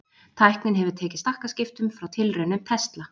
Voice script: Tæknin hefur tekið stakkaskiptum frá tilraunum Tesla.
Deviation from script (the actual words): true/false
false